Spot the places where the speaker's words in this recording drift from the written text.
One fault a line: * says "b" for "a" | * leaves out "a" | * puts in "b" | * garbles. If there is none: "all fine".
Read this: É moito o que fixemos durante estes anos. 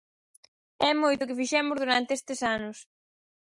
all fine